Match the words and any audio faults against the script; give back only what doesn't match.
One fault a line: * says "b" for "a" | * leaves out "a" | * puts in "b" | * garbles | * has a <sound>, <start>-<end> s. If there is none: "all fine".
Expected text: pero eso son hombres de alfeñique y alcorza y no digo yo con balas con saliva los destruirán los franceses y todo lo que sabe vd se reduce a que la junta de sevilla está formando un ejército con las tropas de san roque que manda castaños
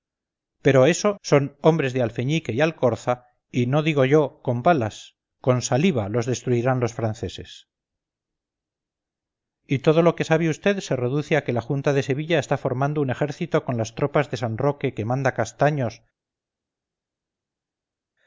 all fine